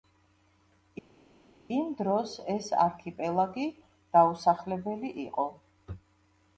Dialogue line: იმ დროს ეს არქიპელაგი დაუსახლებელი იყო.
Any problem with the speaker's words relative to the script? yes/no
no